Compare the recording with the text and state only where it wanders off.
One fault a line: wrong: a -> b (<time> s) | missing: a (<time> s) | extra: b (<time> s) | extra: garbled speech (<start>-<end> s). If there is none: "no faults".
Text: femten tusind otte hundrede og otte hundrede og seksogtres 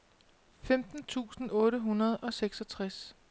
missing: otte hundrede og (2.3 s)